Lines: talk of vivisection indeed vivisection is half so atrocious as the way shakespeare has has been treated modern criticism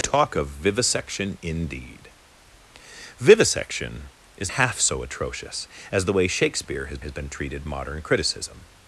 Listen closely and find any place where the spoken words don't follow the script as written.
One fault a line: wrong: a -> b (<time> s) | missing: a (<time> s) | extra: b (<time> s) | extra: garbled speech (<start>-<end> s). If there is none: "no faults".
no faults